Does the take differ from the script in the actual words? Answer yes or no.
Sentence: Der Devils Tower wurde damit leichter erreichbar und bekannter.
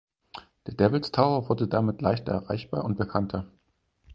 no